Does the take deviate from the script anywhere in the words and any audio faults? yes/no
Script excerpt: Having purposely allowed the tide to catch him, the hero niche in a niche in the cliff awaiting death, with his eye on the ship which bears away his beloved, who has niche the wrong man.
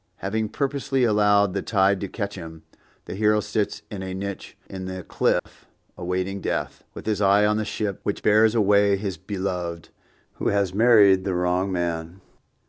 yes